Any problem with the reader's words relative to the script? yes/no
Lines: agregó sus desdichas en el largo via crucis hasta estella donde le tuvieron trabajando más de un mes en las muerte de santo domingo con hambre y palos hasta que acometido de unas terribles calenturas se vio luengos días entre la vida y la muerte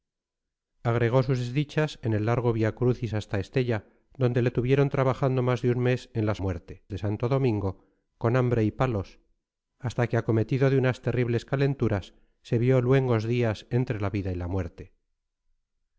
no